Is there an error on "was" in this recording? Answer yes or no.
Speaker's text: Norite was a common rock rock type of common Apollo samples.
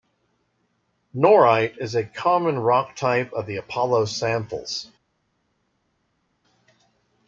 yes